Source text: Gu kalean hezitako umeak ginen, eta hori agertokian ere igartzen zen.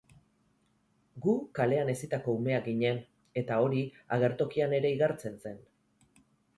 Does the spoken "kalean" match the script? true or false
true